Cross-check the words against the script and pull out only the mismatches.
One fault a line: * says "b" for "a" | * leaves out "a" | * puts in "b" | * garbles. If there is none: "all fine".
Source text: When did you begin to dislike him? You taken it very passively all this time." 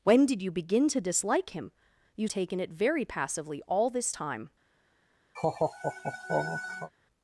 all fine